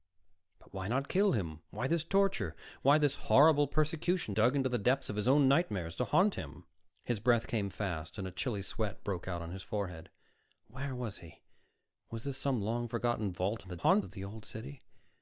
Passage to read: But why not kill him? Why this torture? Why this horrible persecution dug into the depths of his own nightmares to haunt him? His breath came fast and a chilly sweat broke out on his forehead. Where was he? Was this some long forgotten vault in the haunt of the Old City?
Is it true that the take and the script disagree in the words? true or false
false